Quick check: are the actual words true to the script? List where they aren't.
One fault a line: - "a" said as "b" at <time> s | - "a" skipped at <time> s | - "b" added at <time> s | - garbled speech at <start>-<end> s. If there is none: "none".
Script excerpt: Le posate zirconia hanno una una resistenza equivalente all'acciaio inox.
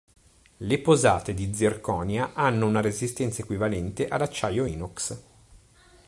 - "di" added at 1.4 s
- "una" skipped at 2.8 s